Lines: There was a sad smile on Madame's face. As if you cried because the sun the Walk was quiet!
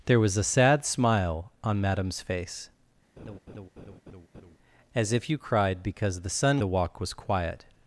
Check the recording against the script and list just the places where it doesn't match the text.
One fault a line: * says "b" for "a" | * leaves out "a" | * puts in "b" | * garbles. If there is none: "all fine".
all fine